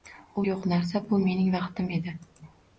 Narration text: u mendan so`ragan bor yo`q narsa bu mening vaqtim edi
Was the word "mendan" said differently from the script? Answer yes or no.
yes